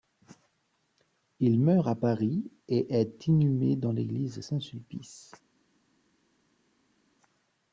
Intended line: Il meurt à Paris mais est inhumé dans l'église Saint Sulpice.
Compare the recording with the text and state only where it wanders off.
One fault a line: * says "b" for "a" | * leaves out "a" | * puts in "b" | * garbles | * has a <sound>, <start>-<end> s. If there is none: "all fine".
* says "et" for "mais"